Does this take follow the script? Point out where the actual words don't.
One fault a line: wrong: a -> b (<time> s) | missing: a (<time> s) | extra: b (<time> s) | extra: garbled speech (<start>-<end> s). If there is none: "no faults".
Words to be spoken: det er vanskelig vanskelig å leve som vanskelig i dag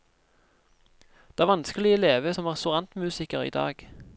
missing: vanskelig (1.9 s)
wrong: vanskelig -> restaurantmusiker (2.5 s)